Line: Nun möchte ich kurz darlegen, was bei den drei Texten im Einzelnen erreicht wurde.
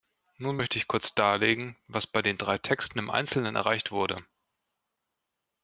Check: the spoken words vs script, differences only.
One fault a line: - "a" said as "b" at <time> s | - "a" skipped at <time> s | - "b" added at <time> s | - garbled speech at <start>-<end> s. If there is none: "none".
none